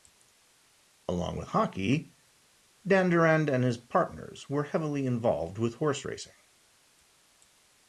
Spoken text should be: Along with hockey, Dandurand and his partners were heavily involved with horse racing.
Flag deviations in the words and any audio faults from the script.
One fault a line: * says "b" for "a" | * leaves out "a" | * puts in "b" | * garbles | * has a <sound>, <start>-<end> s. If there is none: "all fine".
all fine